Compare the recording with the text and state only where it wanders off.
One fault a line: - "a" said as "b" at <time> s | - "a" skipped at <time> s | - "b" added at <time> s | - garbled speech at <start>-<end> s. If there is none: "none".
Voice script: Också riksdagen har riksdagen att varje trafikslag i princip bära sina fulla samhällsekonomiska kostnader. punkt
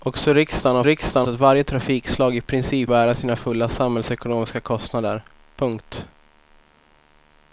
none